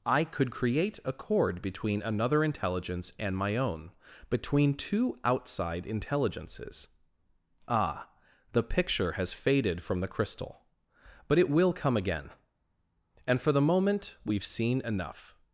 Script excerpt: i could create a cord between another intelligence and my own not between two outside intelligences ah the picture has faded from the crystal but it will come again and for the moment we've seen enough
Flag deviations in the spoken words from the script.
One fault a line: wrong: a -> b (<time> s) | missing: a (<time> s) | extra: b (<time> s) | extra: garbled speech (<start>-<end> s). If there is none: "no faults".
missing: not (3.9 s)